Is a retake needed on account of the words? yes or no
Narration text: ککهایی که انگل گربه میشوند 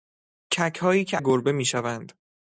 yes